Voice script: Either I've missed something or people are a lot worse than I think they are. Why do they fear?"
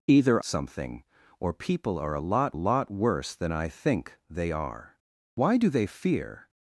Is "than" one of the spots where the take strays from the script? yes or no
no